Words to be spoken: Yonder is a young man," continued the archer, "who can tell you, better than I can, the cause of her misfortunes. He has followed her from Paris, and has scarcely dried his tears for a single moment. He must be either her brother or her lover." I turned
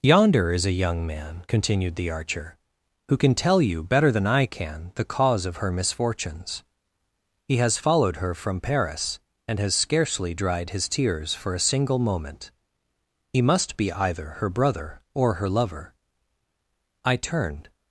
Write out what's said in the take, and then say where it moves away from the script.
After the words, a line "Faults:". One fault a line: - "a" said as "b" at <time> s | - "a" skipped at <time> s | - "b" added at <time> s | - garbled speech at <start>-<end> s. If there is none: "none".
Yonder is a young man," continued the archer, "who can tell you, better than I can, the cause of her misfortunes. He has followed her from Paris, and has scarcely dried his tears for a single moment. He must be either her brother or her lover." I turned
Faults:
none